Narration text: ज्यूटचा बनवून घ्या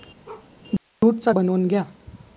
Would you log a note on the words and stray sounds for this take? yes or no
yes